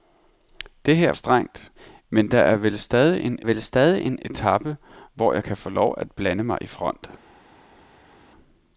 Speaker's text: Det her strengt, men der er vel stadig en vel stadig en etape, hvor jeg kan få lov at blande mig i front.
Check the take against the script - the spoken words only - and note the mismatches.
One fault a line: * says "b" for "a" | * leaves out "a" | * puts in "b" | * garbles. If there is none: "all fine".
all fine